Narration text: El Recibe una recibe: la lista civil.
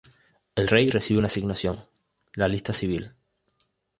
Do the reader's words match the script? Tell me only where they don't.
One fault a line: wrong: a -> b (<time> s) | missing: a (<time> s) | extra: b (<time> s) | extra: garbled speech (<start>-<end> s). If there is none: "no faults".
extra: Rey (0.6 s)
wrong: recibe -> asignación (1.3 s)